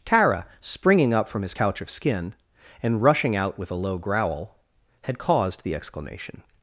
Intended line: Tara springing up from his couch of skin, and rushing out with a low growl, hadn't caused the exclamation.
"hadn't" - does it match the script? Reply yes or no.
no